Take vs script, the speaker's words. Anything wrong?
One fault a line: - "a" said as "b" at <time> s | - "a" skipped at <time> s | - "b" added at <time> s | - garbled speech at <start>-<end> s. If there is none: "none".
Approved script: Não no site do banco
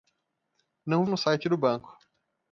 none